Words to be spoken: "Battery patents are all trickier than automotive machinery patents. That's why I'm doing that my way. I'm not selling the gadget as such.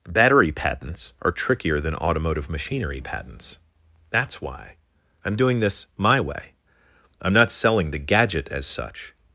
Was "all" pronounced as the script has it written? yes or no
no